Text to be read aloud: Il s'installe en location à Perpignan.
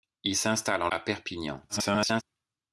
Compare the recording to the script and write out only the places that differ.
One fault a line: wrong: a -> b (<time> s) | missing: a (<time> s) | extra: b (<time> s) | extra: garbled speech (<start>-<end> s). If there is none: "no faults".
missing: location (0.9 s)
extra: garbled speech (1.7-2.2 s)